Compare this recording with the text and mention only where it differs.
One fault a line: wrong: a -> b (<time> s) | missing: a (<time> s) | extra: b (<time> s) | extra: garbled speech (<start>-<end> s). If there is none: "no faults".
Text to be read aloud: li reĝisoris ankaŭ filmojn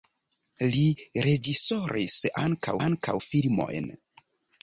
extra: ankaŭ (2.9 s)